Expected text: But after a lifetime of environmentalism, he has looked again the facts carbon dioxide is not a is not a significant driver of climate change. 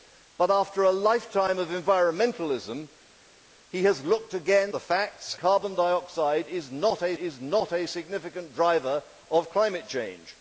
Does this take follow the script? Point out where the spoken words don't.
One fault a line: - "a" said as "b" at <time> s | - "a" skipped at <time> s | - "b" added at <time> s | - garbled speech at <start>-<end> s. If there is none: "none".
none